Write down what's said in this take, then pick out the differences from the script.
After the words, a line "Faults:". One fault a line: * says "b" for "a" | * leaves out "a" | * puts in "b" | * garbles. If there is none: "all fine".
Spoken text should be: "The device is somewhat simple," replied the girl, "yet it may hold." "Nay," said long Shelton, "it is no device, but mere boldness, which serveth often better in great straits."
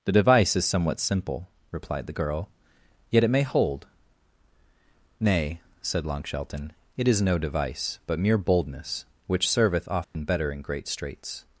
"The device is somewhat simple," replied the girl, "yet it may hold." "Nay," said long Shelton, "it is no device, but mere boldness, which serveth often better in great straits."
Faults:
all fine